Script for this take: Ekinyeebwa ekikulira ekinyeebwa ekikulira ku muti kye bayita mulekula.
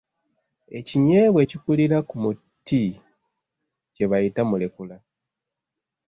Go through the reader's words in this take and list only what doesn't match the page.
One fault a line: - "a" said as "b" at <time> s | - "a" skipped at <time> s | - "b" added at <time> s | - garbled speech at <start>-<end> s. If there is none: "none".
- "ekinyeebwa ekikulira" skipped at 2.0 s